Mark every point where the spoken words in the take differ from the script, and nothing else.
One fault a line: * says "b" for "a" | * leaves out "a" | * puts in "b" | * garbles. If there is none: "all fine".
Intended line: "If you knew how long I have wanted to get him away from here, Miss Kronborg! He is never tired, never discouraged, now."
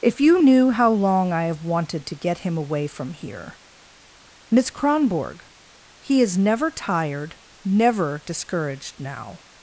all fine